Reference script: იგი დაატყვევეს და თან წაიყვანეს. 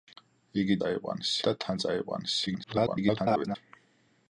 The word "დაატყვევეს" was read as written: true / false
false